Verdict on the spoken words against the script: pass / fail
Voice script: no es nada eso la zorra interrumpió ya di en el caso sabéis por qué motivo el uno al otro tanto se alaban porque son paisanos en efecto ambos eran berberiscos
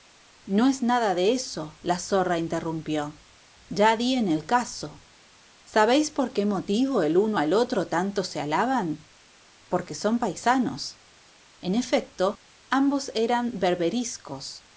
fail